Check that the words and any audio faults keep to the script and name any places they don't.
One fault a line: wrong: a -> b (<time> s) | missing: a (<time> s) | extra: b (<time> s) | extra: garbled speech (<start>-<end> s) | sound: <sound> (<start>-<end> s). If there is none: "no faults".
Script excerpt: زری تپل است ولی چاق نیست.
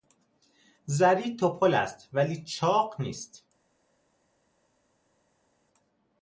no faults